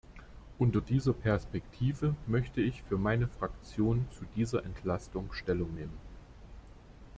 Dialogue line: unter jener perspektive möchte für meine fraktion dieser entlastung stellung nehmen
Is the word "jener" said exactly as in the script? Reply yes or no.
no